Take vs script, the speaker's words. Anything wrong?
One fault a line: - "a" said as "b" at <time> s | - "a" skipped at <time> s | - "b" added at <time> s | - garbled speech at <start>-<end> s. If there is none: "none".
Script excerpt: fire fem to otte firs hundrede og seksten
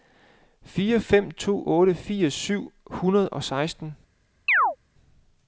- "syv" added at 2.3 s